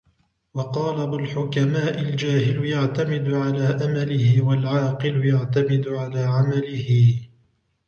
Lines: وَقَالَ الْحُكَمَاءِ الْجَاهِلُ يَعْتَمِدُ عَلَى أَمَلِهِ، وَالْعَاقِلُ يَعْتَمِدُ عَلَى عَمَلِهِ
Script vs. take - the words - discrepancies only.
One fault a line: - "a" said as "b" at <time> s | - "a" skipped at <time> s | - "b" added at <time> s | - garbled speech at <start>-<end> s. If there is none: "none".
none